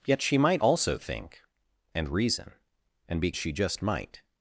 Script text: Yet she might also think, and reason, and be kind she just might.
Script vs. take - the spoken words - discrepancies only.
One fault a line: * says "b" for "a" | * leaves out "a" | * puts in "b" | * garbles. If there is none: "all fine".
* leaves out "kind"